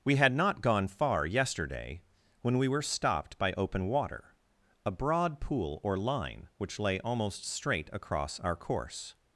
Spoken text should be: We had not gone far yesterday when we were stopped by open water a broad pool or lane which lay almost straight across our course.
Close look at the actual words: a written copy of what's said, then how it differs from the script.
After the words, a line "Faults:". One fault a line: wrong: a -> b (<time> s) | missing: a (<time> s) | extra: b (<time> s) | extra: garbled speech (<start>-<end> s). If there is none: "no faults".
We had not gone far yesterday when we were stopped by open water a broad pool or line which lay almost straight across our course.
Faults:
wrong: lane -> line (6.0 s)